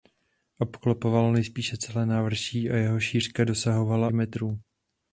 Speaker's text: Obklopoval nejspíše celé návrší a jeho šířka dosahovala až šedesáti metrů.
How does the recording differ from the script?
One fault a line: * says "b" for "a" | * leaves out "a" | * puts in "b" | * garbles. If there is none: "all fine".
* leaves out "až šedesáti"